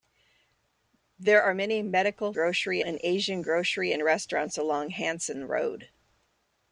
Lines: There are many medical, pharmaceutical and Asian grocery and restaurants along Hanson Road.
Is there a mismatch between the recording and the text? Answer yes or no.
yes